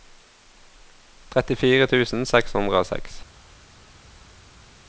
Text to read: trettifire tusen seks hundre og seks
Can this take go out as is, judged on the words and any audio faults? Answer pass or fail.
pass